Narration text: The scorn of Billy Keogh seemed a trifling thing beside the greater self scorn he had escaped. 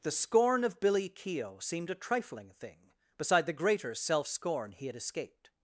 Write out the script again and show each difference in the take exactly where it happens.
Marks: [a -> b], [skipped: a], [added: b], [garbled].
The scorn of Billy Keogh seemed a trifling thing beside the greater self scorn he had escaped.